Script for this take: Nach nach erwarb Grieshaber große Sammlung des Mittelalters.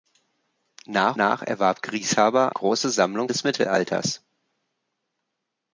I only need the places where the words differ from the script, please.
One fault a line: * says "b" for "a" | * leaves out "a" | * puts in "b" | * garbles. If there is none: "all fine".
all fine